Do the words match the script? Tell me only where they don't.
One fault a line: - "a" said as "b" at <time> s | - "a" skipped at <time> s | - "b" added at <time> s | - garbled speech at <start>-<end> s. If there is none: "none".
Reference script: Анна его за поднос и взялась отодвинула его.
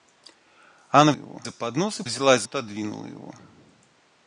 none